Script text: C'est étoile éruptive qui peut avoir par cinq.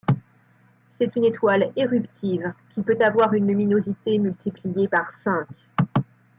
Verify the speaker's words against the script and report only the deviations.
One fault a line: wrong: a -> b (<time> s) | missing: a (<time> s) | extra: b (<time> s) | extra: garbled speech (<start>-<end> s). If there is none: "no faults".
extra: une (1.1 s)
extra: une luminosité multipliée (3.3 s)